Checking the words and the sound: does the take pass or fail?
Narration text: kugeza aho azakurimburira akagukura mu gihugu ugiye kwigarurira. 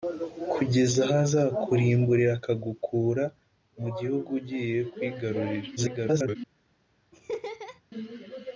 fail